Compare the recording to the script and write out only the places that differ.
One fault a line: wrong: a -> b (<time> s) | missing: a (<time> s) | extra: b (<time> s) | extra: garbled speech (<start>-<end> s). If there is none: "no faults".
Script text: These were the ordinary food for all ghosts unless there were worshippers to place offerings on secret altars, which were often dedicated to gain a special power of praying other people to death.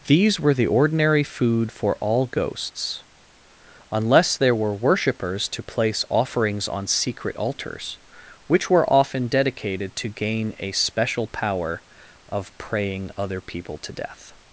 no faults